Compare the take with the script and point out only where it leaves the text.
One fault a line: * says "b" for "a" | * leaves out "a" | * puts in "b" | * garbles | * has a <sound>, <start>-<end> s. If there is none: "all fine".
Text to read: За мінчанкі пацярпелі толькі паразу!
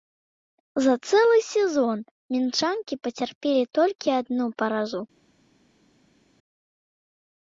* puts in "цэлы сезон"
* puts in "адну"